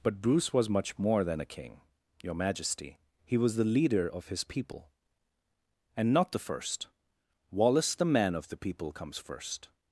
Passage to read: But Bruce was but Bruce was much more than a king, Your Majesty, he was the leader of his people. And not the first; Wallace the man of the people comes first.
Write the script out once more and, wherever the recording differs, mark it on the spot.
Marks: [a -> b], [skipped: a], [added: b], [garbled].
But Bruce was [skipped: but Bruce was] much more than a king, Your Majesty, he was the leader of his people. And not the first; Wallace the man of the people comes first.